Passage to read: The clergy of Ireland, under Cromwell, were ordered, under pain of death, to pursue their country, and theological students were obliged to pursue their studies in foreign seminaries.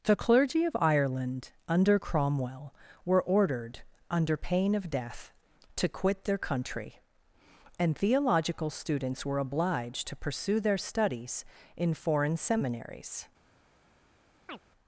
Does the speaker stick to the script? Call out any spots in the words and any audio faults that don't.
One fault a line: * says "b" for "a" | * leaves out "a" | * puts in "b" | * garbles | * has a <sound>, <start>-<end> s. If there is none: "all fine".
* says "quit" for "pursue"
* has a chirp, 14.5-14.6 s